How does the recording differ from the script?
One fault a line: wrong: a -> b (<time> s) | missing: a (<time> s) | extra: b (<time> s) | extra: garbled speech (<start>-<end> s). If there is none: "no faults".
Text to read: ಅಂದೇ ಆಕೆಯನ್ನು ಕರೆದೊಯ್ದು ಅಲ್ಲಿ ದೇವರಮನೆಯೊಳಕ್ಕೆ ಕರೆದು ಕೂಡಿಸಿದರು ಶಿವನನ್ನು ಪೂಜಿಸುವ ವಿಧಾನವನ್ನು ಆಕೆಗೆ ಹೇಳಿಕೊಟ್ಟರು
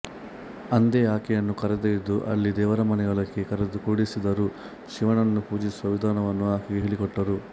no faults